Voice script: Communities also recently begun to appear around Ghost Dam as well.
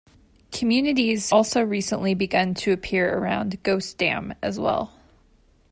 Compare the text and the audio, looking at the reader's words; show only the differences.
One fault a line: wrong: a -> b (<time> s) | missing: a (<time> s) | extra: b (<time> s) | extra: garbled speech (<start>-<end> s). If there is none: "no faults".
no faults